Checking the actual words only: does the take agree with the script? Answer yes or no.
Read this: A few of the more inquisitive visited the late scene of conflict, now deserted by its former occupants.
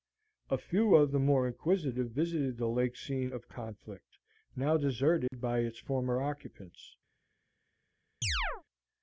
yes